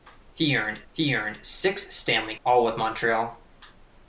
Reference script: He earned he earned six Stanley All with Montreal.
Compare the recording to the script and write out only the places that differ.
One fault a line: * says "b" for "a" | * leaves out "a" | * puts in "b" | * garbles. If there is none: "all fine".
all fine